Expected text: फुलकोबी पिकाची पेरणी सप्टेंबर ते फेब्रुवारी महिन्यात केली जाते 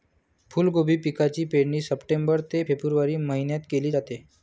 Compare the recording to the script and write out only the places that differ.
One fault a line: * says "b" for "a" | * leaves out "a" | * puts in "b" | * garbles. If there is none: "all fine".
all fine